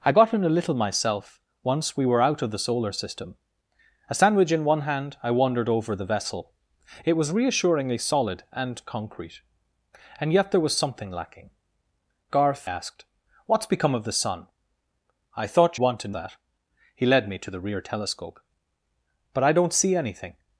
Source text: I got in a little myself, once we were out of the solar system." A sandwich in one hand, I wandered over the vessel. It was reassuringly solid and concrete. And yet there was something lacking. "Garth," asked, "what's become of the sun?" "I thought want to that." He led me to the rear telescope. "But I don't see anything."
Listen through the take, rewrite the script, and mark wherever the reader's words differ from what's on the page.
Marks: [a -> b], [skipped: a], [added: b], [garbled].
I got in a little myself, once we were out of the solar system." A sandwich in one hand, I wandered over the vessel. It was reassuringly solid and concrete. And yet there was something lacking. "Garth," asked, "what's become of the sun?" "I thought want to that." He led me to the rear telescope. "But I don't see anything."